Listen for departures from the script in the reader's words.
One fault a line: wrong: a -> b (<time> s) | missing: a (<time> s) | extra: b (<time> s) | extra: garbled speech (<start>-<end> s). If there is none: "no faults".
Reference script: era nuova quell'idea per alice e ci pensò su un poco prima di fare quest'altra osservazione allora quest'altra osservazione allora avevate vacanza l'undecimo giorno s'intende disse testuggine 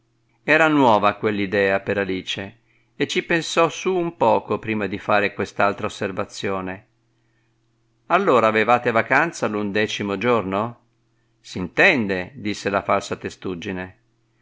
missing: quest'altra osservazione allora (8.5 s)
extra: la falsa (12.7 s)